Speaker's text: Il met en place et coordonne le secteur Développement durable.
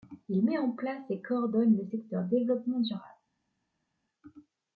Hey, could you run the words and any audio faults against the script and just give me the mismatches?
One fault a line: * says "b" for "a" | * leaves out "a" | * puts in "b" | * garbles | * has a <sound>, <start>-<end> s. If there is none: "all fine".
all fine